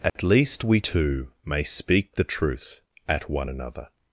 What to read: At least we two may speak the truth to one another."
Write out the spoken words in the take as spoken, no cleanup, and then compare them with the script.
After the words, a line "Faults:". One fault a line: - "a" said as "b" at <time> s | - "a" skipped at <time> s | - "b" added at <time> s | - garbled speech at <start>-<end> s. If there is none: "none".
At least we two may speak the truth at one another."
Faults:
- "to" said as "at" at 3.1 s